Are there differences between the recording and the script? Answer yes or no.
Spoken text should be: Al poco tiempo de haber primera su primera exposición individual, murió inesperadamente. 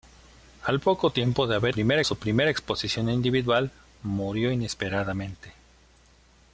no